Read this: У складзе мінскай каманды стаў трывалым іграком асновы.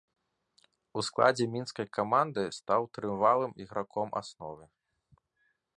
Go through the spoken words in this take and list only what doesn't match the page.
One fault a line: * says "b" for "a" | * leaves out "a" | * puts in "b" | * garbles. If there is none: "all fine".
all fine